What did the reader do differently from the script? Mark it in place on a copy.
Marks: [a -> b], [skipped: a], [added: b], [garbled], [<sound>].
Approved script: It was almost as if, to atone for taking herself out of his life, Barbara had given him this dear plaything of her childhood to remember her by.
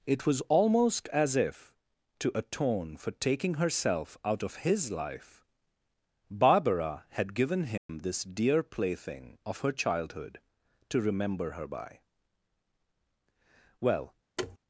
It was almost as if, to atone for taking herself out of his life, Barbara had given him [dropout] this dear plaything of her childhood to remember her by. [added: Well] [thud]